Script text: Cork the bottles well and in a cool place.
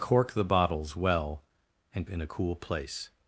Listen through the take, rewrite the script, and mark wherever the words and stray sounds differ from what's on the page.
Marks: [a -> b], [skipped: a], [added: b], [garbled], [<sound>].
Cork the bottles well and in a cool place.